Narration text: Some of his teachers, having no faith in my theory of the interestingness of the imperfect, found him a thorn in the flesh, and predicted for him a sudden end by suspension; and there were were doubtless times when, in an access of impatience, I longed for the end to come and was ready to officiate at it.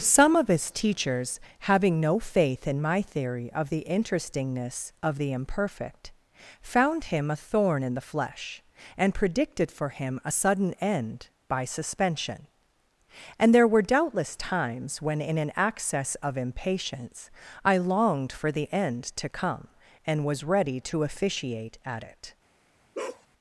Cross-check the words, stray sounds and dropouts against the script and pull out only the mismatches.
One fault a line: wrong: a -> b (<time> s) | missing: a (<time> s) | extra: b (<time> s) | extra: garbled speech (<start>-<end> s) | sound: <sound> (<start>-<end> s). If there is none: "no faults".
missing: were (13.8 s)
sound: bark (22.9-23.3 s)